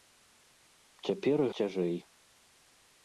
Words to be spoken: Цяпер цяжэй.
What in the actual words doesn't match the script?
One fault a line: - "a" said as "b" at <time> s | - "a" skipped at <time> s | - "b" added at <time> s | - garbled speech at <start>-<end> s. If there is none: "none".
none